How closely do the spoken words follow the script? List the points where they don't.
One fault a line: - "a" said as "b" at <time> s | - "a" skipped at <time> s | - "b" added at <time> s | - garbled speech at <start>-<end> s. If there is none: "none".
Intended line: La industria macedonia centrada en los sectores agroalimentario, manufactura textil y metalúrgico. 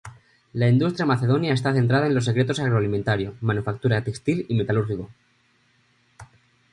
- "está" added at 1.5 s